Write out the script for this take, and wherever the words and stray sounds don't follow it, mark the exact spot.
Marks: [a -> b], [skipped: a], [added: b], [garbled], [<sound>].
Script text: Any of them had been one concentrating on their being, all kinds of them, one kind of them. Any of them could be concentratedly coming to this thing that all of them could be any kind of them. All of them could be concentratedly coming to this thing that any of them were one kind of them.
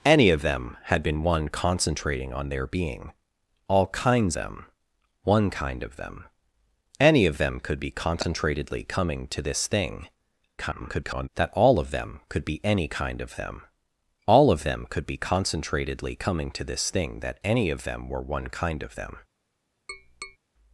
Any of them had been one concentrating on their being, all kinds [skipped: of] them, one kind of them. Any of them could be concentratedly coming to this thing [garbled] that all of them could be any kind of them. All of them could be concentratedly coming to this thing that any of them were one kind of them. [tap]